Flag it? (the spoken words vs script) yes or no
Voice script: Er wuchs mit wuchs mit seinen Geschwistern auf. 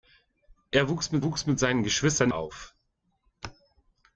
no